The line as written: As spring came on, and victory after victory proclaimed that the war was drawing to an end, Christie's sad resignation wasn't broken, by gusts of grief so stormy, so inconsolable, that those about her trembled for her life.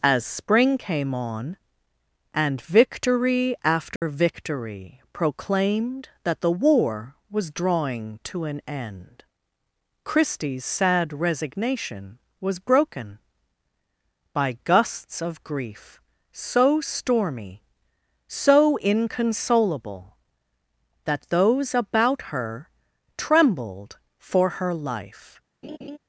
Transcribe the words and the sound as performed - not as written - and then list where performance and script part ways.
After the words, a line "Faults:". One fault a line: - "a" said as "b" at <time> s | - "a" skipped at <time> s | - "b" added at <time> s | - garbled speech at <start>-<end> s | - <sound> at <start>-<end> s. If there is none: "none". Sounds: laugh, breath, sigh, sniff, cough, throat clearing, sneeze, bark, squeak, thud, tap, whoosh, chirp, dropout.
As spring came on, and victory after victory proclaimed that the war was drawing to an end, Christie's sad resignation was broken, by gusts of grief so stormy, so inconsolable, that those about her trembled for her life.
Faults:
- dropout at 4.0-4.0 s
- "wasn't" said as "was" at 12.4 s
- laugh at 25.6-26.0 s